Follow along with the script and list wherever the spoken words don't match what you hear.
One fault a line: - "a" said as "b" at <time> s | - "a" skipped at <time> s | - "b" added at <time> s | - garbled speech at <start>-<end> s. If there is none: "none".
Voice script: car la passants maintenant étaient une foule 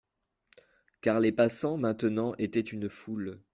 - "la" said as "les" at 1.2 s